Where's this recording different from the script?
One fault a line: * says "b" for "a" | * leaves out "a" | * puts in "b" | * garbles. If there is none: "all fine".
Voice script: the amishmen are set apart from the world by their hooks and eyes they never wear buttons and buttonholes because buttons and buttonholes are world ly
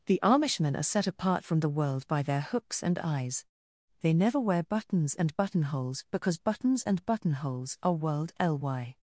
all fine